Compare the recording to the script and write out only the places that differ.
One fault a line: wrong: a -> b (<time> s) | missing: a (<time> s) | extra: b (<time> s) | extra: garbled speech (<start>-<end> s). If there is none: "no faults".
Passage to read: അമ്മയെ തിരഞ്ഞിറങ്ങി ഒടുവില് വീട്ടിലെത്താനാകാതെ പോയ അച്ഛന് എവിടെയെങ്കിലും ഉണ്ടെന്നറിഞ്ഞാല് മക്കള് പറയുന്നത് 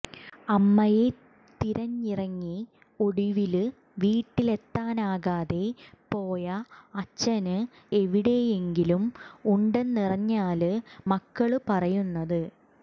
no faults